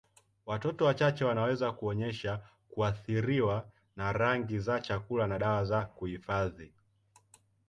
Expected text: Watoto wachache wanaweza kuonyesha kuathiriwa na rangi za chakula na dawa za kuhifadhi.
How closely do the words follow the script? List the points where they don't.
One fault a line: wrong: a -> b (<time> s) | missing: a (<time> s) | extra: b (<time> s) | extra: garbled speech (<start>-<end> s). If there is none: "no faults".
no faults